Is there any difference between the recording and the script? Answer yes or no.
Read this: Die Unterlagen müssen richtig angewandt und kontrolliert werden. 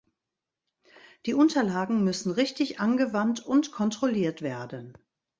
no